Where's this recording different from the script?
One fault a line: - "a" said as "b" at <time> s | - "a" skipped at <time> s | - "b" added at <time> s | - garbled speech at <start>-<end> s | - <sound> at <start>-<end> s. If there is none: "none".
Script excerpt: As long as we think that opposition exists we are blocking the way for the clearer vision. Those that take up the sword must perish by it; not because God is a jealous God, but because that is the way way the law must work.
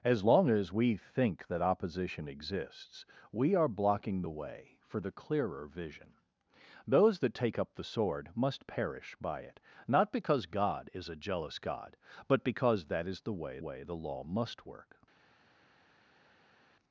none